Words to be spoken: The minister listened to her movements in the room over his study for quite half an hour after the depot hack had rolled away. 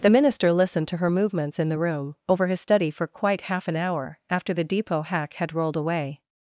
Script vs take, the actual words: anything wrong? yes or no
no